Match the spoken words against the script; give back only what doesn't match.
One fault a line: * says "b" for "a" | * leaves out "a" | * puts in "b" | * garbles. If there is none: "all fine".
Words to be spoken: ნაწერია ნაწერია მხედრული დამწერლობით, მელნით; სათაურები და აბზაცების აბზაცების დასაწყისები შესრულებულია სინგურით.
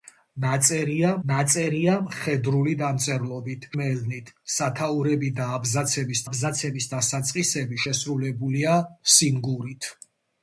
all fine